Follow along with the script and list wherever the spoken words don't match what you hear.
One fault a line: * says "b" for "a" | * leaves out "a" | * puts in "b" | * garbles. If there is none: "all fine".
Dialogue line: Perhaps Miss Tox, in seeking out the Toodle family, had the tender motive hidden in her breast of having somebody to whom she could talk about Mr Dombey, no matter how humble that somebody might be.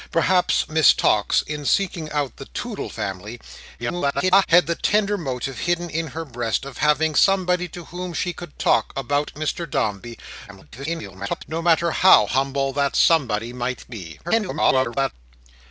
* garbles
* garbles
* garbles